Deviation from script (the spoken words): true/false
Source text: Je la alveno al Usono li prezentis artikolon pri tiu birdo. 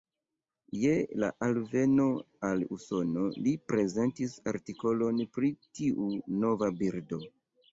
true